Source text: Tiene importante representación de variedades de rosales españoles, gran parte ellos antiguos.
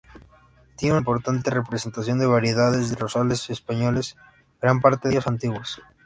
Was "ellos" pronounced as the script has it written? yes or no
yes